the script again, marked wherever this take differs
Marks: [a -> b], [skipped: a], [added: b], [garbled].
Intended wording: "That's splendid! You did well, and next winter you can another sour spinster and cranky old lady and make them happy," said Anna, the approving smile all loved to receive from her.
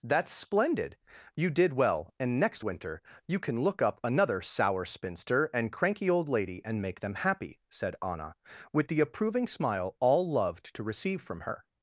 "That's splendid! You did well, and next winter you can [added: look up] another sour spinster and cranky old lady and make them happy," said Anna, [added: with] the approving smile all loved to receive from her.